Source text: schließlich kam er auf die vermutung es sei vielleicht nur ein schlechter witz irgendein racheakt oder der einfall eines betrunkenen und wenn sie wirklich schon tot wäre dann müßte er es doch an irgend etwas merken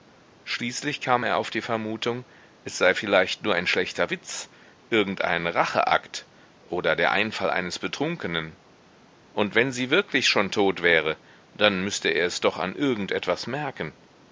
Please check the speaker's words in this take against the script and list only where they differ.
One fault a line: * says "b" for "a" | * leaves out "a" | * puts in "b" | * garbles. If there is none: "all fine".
all fine